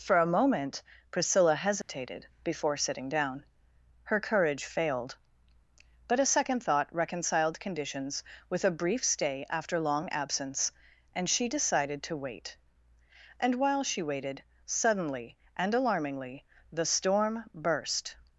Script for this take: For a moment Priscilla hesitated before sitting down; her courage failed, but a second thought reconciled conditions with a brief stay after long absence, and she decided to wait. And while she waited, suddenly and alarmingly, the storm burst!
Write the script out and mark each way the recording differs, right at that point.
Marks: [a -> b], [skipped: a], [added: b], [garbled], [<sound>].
For a moment Priscilla hesitated [dropout] before sitting down; her courage failed, but a second thought reconciled conditions with a brief stay after long absence, and she decided to wait. And while she waited, suddenly and alarmingly, the storm burst!